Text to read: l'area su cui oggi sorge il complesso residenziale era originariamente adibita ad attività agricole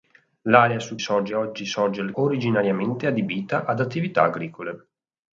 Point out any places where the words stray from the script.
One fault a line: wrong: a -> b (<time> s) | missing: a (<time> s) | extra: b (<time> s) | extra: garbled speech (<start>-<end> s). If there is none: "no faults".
wrong: cui -> sorge (1.0 s)
missing: complesso residenziale era (2.1 s)